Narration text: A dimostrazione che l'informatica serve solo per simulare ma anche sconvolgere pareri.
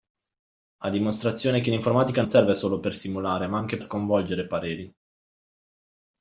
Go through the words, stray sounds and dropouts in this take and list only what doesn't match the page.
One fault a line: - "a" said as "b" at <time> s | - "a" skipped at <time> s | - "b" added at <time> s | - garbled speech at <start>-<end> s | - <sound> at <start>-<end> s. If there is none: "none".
none